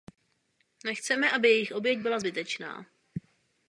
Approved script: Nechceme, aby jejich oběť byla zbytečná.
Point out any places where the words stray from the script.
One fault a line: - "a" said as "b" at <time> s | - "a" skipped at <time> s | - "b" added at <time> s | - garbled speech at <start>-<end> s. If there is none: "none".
none